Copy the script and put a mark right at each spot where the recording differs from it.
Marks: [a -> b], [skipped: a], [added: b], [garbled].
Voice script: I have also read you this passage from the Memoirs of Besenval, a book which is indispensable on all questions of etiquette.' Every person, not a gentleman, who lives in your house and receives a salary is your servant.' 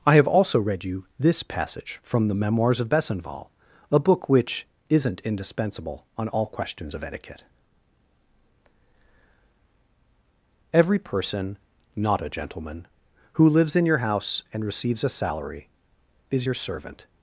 I have also read you this passage from the Memoirs of Besenval, a book which [is -> isn't] indispensable on all questions of etiquette.' Every person, not a gentleman, who lives in your house and receives a salary is your servant.'